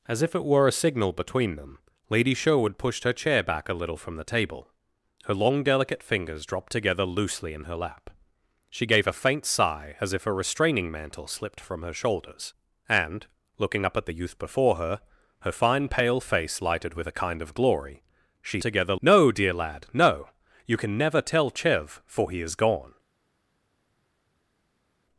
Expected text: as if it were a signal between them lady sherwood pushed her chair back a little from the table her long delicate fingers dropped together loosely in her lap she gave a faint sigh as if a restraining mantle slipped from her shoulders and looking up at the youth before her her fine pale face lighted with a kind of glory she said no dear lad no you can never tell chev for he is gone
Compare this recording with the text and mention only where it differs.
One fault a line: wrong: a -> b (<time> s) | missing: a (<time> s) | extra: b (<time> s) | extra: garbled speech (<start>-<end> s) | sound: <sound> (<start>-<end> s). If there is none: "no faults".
wrong: said -> together (18.6 s)